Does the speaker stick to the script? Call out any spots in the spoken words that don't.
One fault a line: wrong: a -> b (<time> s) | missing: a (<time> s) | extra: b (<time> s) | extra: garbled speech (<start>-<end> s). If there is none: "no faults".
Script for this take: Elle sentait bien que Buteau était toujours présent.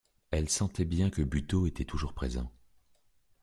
no faults